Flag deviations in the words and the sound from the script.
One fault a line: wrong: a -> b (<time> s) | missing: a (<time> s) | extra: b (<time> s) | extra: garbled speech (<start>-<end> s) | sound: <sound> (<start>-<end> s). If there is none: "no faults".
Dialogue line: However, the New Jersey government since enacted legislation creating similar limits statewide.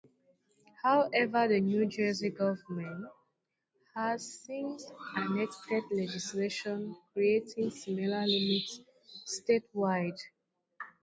extra: has (4.0 s)